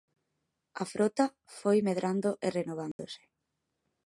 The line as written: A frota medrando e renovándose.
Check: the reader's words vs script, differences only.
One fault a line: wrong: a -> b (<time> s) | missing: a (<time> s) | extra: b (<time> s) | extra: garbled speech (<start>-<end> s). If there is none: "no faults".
extra: foi (1.6 s)